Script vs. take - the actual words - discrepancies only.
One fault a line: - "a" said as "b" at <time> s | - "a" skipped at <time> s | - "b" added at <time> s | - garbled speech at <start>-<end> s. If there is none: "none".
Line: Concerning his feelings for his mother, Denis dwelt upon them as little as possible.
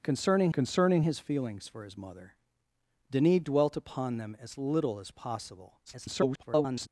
- "concerning" added at 0.5 s
- garbled speech at 5.9-6.9 s